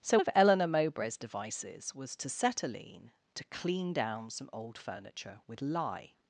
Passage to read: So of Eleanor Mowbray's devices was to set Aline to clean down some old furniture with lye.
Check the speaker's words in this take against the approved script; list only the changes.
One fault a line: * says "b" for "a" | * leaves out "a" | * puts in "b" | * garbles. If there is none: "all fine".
all fine